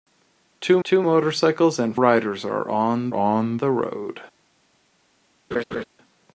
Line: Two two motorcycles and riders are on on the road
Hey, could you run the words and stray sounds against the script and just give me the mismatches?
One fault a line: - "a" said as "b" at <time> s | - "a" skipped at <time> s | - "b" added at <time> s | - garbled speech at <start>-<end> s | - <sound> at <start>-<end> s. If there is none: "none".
- laugh at 5.5-5.8 s